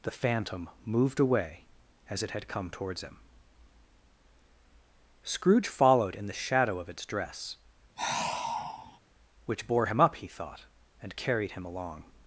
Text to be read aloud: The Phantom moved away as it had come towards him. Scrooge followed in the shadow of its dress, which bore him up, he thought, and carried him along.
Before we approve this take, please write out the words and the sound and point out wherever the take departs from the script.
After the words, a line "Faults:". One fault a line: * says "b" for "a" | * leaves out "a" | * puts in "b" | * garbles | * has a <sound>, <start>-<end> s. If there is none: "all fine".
The Phantom moved away as it had come towards him. Scrooge followed in the shadow of its dress, which bore him up, he thought, and carried him along.
Faults:
* has a sigh, 8.0-9.0 s